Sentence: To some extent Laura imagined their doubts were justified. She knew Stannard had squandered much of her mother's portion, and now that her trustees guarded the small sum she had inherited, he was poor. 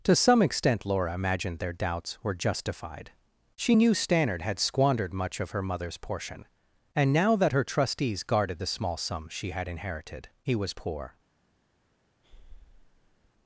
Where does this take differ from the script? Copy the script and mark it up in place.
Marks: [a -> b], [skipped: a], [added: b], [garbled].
To some extent Laura imagined their doubts were justified. She knew Stannard had squandered much of her mother's portion, and now that her trustees guarded the small sum she had inherited, he was poor.